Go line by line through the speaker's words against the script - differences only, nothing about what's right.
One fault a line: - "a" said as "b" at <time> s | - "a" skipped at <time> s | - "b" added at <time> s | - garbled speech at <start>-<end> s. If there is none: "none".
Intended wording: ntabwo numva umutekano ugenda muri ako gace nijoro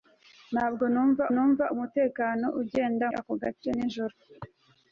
- "numva" added at 1.3 s
- "muri" skipped at 3.1 s